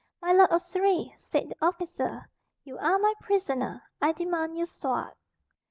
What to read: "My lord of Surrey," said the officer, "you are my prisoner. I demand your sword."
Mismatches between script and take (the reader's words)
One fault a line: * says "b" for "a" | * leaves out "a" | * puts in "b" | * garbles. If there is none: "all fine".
all fine